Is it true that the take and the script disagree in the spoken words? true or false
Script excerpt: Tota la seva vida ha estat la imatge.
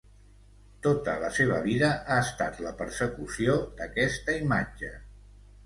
true